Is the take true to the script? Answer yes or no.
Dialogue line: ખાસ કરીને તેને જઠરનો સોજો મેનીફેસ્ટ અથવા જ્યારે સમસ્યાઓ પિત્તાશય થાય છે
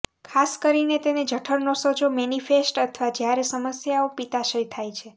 yes